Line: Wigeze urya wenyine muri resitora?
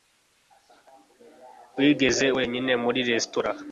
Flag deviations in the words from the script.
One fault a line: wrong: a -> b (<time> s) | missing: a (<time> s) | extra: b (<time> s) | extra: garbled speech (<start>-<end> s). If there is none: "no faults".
missing: urya (2.3 s)